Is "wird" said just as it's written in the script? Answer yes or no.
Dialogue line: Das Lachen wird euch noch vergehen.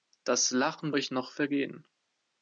no